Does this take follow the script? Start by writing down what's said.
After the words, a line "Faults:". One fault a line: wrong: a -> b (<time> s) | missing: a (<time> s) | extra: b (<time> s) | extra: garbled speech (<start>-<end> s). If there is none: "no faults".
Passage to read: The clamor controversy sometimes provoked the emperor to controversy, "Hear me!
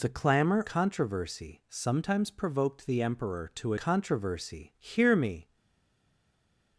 The clamor controversy sometimes provoked the emperor to controversy, "Hear me!
Faults:
no faults